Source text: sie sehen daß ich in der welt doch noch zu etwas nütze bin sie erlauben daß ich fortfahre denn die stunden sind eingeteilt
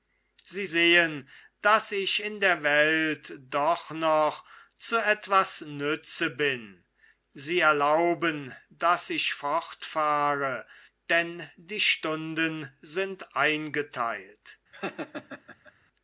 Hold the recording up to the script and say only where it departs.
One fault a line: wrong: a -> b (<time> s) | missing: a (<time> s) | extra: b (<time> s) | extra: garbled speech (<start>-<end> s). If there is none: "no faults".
no faults